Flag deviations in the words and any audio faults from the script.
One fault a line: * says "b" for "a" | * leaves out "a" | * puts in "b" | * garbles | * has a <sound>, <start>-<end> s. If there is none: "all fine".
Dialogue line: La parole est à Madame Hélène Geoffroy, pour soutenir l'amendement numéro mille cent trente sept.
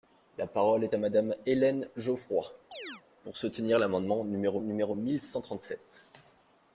* has a chirp, 2.7-3.0 s
* puts in "numéro"